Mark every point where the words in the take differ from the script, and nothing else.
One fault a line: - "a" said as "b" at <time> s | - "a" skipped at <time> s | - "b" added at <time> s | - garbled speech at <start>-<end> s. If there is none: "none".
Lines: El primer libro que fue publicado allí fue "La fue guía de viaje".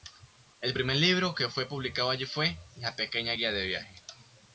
- "fue" said as "pequeña" at 3.0 s